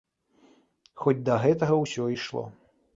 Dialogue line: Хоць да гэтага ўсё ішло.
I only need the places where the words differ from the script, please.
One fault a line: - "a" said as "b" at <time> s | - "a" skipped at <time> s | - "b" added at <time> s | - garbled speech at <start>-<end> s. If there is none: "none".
none